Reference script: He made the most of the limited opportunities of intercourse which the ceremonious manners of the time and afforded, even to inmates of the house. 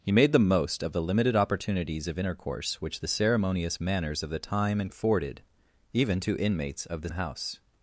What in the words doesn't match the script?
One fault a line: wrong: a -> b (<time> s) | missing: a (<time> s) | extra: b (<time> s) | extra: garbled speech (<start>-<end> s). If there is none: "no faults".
no faults